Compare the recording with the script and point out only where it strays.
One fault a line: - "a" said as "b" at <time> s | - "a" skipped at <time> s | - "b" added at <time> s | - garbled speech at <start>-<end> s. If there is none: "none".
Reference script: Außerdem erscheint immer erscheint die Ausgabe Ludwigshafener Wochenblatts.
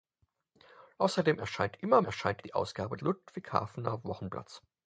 none